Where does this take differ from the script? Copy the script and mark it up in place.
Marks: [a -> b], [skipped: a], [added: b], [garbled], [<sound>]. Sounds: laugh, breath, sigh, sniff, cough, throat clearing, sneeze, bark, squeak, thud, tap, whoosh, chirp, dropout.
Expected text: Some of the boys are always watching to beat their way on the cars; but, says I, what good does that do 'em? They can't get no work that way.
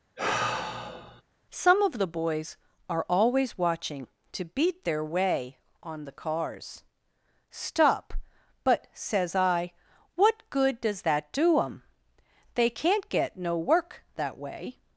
[sigh] Some of the boys are always watching to beat their way on the cars; [added: stop] but, says I, what good does that do 'em? They can't get no work that way.